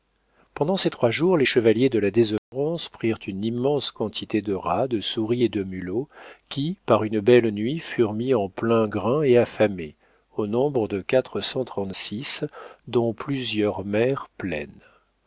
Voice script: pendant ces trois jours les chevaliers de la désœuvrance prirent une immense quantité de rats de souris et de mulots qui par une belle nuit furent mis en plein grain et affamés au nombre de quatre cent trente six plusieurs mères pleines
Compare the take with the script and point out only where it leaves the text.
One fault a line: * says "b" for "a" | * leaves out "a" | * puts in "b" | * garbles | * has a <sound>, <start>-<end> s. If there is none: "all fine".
* has a dropout, 2.4-2.5 s
* puts in "dont"